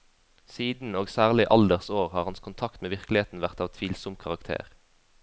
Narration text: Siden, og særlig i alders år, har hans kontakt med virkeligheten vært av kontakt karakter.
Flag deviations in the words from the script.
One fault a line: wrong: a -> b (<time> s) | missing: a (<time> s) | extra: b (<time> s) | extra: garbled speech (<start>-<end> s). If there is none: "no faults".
wrong: kontakt -> tvilsom (3.7 s)